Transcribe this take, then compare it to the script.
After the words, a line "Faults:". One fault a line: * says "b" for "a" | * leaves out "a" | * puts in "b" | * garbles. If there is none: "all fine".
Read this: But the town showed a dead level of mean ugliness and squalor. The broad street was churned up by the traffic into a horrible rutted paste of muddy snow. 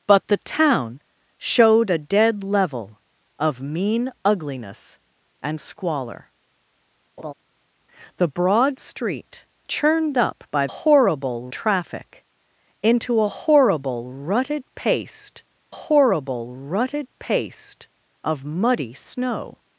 But the town showed a dead level of mean ugliness and squalor. The broad street churned up by horrible traffic into a horrible rutted paste horrible rutted paste of muddy snow.
Faults:
* leaves out "was"
* says "horrible" for "the"
* puts in "horrible rutted paste"